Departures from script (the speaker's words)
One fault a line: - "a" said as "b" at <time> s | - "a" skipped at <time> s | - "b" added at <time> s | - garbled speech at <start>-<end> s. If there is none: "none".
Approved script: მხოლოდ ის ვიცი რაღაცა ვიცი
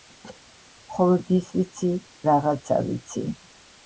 none